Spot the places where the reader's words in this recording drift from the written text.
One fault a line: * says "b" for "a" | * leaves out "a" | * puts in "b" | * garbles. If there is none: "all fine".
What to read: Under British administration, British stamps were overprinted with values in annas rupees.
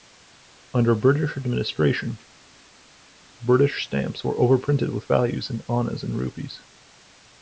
* puts in "and"